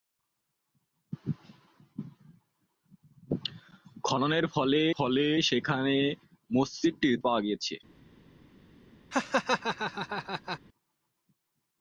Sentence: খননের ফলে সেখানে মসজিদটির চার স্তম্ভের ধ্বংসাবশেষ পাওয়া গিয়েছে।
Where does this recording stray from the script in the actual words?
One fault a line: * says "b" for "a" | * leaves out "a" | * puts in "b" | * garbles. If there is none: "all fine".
* puts in "ফলে"
* leaves out "চার স্তম্ভের ধ্বংসাবশেষ"